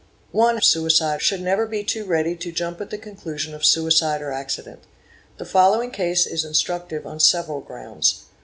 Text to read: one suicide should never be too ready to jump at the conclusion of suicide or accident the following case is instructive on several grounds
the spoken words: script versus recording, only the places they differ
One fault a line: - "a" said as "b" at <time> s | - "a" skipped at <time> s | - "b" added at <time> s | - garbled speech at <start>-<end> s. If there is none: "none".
none